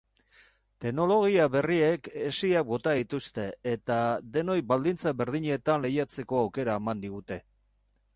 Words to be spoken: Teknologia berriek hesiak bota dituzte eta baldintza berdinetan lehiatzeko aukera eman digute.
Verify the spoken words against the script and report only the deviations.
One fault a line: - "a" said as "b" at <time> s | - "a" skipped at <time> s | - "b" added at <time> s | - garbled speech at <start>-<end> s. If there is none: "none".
- "denoi" added at 4.4 s